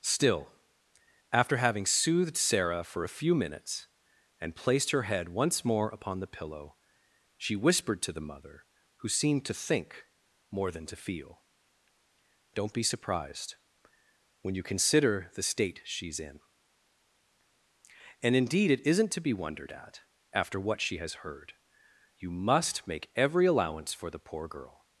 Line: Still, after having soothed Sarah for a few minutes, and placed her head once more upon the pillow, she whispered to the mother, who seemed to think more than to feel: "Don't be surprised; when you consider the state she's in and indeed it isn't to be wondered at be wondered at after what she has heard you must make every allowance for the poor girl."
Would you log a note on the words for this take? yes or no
yes